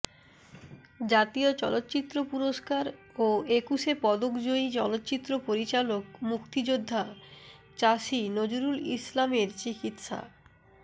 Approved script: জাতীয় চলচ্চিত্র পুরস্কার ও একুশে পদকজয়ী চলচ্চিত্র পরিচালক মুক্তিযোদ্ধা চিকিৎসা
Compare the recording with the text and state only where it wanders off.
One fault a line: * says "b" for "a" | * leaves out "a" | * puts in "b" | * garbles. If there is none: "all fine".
* puts in "চাষী নজরুল ইসলামের"